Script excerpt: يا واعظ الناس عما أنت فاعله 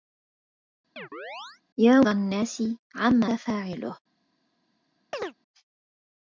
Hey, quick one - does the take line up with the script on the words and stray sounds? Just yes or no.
no